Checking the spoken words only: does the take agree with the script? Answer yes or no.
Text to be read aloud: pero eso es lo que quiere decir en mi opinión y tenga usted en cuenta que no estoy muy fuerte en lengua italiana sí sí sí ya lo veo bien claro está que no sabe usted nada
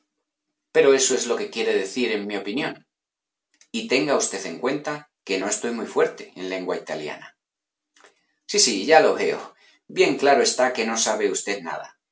no